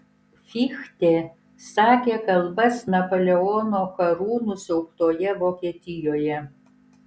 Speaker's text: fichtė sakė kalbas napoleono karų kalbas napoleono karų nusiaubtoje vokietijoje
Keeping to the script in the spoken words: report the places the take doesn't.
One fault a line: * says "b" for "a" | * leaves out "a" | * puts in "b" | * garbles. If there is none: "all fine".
* leaves out "kalbas napoleono karų"